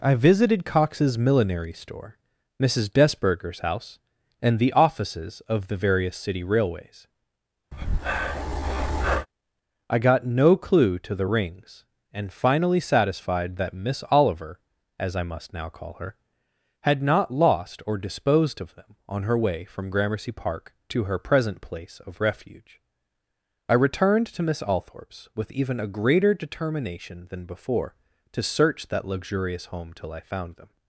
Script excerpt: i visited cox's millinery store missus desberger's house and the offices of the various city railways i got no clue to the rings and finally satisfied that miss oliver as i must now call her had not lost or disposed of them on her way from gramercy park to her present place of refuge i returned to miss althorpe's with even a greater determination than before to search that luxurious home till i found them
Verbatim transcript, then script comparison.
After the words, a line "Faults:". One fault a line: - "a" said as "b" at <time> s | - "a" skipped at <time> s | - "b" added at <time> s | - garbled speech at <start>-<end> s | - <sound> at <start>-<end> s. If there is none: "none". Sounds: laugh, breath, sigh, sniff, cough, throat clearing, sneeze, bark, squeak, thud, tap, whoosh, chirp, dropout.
i visited cox's millinery store missus desberger's house and the offices of the various city railways i got no clue to the rings and finally satisfied that miss oliver as i must now call her had not lost or disposed of them on her way from gramercy park to her present place of refuge i returned to miss althorpe's with even a greater determination than before to search that luxurious home till i found them
Faults:
- breath at 7.7-9.3 s